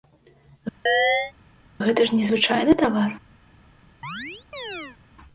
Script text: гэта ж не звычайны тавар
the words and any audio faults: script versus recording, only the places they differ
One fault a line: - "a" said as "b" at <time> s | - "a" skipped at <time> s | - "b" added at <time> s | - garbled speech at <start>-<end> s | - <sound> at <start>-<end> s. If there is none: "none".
- chirp at 0.9-1.3 s
- chirp at 4.0-5.0 s